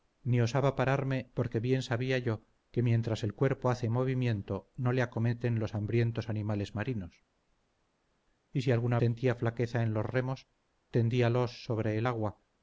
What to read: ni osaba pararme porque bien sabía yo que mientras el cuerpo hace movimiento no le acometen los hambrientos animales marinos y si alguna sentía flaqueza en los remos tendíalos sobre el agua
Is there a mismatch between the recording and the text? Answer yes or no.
no